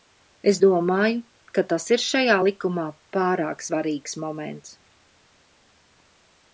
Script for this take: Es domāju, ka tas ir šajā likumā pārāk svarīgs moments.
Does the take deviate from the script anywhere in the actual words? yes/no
no